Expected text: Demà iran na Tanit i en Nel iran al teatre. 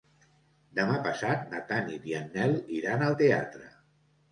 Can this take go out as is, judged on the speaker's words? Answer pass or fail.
fail